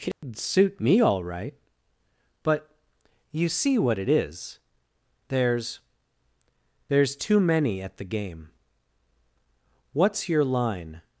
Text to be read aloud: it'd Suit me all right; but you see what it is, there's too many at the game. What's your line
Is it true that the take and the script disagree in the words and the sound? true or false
true